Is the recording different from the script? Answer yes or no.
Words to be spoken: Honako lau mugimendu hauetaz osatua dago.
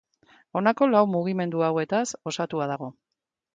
no